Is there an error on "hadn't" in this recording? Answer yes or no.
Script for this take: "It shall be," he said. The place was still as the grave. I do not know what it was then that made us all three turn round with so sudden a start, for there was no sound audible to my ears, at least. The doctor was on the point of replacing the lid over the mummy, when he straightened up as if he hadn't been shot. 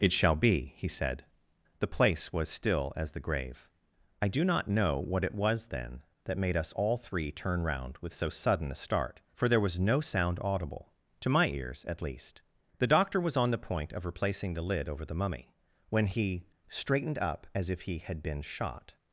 yes